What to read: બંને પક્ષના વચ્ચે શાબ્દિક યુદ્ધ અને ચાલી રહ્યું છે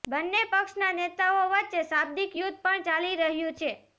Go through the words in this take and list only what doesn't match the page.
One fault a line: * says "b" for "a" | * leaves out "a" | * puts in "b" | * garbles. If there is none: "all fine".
* puts in "નેતાઓ"
* says "પણ" for "અને"